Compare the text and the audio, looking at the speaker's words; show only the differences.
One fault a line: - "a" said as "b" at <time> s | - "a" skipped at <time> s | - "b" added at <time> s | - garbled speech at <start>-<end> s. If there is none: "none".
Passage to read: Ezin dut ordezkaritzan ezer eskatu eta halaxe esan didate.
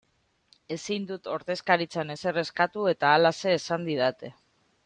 none